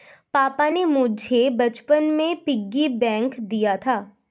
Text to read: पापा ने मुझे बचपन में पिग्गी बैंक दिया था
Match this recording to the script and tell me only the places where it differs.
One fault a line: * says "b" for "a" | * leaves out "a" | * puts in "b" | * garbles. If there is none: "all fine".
all fine